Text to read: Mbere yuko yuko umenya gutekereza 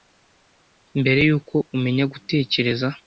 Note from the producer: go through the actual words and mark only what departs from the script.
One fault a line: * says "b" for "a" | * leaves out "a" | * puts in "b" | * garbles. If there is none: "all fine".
* leaves out "yuko"